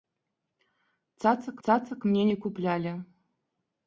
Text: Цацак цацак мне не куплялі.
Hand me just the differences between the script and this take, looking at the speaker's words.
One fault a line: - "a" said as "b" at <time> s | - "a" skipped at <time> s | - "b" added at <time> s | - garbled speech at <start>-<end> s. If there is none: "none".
none